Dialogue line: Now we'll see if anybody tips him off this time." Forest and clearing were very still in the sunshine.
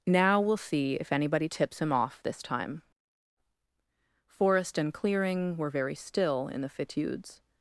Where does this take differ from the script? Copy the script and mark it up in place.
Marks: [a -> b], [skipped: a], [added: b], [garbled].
Now we'll see if anybody tips him off this time." Forest and clearing were very still in the [sunshine. -> fitudes]